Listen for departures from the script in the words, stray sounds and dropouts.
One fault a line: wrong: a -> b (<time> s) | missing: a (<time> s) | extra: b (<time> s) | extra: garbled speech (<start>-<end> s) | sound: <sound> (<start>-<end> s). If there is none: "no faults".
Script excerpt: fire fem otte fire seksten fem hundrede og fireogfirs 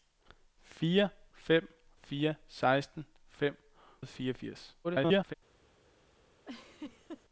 missing: otte (1.7 s)
missing: hundrede (3.6 s)
extra: garbled speech (4.8-5.3 s)
sound: laugh (6.5-7.3 s)